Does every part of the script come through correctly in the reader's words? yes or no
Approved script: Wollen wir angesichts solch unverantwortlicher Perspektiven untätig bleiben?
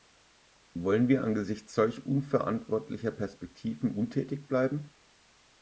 yes